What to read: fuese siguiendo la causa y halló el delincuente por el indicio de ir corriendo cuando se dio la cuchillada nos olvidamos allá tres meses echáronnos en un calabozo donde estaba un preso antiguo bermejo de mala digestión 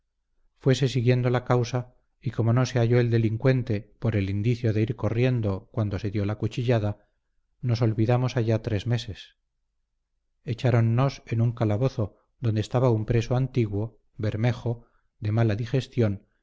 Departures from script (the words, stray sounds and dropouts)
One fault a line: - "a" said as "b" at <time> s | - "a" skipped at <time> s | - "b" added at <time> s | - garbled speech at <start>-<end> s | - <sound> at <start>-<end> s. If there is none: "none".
- "como no se" added at 2.3 s